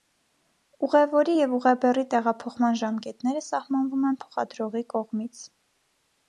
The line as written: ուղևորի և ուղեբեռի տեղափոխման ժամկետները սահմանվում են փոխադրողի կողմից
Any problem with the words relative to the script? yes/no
no